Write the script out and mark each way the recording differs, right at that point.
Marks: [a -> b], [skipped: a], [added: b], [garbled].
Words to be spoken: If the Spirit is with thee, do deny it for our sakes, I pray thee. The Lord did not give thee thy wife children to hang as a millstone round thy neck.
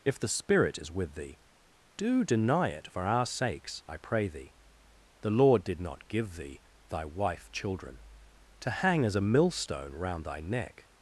If the Spirit is with thee, do deny it for our sakes, I pray thee. The Lord did not give thee thy wife children to hang as a millstone round thy neck.